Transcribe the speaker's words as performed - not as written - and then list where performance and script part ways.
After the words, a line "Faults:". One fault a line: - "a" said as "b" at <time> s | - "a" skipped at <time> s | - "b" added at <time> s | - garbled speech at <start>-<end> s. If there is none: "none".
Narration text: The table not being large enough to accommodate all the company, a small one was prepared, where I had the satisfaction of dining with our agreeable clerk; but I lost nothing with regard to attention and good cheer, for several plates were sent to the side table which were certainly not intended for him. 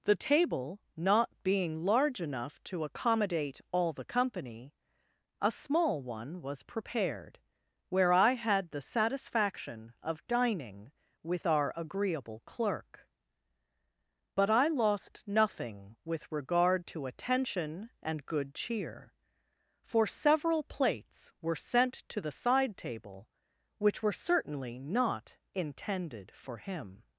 The table not being large enough to accommodate all the company, a small one was prepared, where I had the satisfaction of dining with our agreeable clerk; but I lost nothing with regard to attention and good cheer, for several plates were sent to the side table which were certainly not intended for him.
Faults:
none